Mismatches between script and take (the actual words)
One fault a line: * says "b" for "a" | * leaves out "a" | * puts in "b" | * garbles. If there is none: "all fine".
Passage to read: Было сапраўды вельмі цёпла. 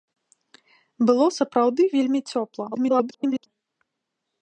* garbles